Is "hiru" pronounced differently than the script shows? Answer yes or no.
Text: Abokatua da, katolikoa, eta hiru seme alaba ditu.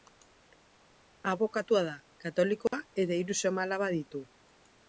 no